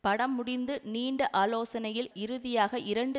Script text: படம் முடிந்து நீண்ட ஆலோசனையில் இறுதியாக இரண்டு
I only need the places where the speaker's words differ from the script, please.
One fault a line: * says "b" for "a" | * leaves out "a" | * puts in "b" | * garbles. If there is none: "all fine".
all fine